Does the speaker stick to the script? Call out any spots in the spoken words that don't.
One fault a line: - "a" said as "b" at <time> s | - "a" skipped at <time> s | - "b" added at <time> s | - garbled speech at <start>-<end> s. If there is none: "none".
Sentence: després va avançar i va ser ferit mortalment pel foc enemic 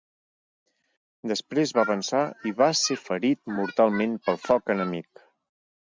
none